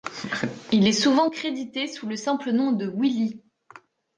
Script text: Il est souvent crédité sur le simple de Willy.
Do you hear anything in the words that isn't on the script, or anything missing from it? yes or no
yes